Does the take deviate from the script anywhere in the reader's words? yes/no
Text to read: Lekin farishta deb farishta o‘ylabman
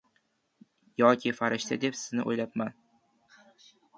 yes